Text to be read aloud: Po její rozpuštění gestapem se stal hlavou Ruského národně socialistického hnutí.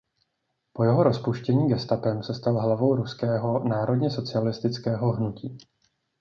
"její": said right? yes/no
no